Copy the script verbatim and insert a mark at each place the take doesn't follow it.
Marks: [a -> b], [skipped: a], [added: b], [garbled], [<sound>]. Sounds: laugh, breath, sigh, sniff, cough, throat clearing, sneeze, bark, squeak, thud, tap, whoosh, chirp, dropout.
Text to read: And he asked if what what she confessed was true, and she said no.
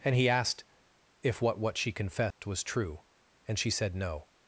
And he asked if what what she confessed [dropout] was true, and she said no.